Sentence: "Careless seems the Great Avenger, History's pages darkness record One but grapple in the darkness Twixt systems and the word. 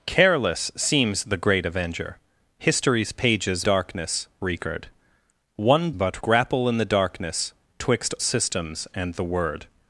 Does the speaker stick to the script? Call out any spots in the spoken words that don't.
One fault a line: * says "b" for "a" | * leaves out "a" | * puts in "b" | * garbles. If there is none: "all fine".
all fine